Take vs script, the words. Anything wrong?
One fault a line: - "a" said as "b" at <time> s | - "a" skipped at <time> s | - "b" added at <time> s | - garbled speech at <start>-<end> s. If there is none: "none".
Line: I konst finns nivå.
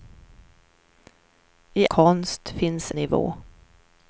none